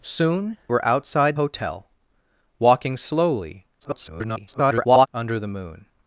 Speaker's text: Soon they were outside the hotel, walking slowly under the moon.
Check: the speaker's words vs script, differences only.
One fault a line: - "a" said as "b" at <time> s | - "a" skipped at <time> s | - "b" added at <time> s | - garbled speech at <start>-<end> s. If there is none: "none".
- "they" skipped at 0.6 s
- "the" skipped at 1.4 s
- garbled speech at 3.8-5.1 s